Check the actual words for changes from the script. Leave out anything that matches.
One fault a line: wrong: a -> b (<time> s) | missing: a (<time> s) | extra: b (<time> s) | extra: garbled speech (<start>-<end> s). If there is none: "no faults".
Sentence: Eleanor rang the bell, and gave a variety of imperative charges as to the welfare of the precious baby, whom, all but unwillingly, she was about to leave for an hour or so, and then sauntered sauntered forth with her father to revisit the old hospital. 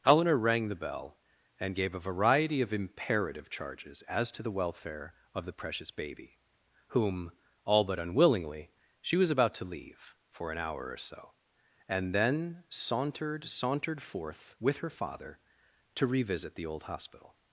no faults